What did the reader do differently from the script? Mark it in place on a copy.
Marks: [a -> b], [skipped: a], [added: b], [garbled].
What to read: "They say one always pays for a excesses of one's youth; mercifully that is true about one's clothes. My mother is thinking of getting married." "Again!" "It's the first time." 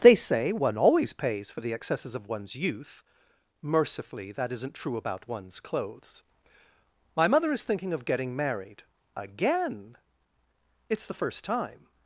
"They say one always pays for [a -> the] excesses of one's youth; mercifully that [is -> isn't] true about one's clothes. My mother is thinking of getting married." "Again!" "It's the first time."